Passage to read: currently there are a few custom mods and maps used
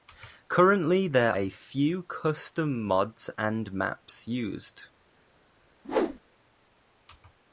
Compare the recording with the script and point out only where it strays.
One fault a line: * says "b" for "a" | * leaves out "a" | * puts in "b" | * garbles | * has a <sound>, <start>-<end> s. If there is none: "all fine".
* leaves out "are"
* has a whoosh, 5.8-6.2 s